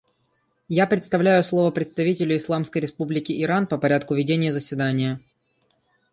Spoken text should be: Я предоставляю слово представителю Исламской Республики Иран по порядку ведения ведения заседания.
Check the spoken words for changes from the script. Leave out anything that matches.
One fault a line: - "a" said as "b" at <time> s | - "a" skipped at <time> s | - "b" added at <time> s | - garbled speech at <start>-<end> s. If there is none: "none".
- "ведения" skipped at 4.5 s